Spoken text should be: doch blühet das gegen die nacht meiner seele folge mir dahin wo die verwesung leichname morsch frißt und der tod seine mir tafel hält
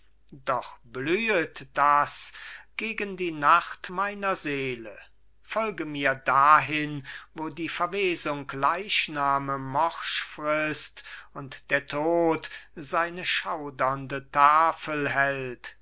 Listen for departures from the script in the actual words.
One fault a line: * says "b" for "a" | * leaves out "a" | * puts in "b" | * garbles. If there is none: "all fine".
* says "schaudernde" for "mir"